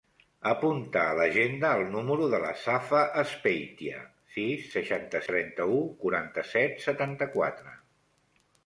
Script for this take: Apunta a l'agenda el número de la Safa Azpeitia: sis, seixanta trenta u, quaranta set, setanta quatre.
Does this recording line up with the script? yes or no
yes